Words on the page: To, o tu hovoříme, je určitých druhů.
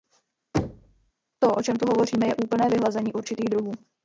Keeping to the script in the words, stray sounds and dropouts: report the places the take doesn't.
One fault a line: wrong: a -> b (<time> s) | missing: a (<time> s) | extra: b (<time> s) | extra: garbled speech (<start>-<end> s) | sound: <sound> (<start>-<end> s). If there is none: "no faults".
sound: thud (0.5-1.1 s)
extra: čem (1.6 s)
extra: úplné vyhlazení (2.3 s)